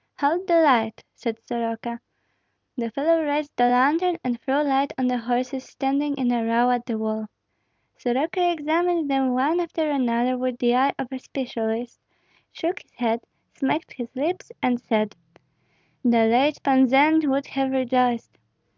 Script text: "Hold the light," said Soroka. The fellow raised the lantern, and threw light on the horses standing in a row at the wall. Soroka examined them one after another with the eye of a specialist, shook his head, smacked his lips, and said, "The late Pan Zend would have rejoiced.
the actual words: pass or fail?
pass